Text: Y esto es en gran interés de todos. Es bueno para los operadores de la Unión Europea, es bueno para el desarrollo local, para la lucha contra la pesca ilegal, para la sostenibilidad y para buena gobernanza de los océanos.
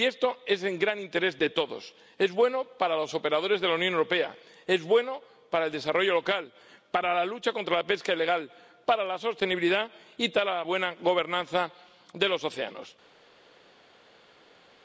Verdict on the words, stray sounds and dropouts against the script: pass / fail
pass